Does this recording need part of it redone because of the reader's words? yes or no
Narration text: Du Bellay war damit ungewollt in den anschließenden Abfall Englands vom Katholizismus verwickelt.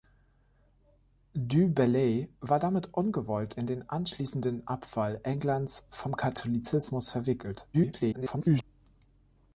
yes